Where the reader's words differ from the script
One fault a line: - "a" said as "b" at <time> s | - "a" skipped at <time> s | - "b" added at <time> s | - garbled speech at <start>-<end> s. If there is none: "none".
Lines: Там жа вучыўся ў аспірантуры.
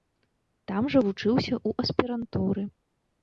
none